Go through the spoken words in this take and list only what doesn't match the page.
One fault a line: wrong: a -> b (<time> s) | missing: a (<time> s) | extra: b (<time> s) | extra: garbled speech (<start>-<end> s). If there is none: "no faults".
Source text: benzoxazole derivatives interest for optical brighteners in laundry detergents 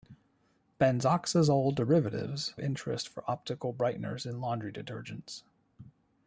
no faults